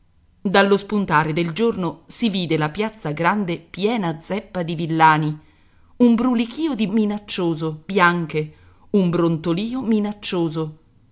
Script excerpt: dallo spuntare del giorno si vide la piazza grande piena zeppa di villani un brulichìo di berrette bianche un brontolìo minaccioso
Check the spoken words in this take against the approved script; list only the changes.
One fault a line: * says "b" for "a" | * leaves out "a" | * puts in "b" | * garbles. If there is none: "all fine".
* says "minaccioso" for "berrette"